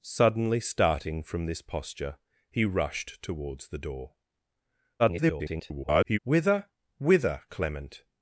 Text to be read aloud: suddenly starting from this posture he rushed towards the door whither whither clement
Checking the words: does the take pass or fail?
fail